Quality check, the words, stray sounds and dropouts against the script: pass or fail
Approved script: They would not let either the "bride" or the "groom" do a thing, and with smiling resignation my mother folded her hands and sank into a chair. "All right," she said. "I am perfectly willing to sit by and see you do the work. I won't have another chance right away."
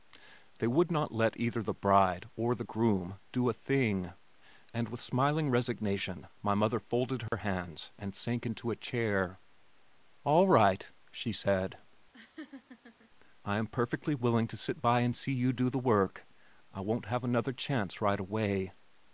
fail